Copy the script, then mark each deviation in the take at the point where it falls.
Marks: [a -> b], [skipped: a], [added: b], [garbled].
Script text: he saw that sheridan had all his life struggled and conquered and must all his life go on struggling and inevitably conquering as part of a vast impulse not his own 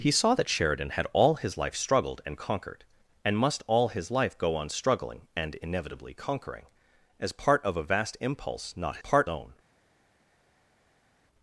he saw that sheridan had all his life struggled and conquered and must all his life go on struggling and inevitably conquering as part of a vast impulse not [his -> part] own